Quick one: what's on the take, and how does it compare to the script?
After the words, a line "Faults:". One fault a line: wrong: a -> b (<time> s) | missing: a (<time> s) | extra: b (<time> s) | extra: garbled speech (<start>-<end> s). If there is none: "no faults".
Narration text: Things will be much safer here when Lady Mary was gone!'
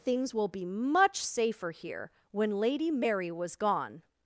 Things will be much safer here when Lady Mary was gone!'
Faults:
no faults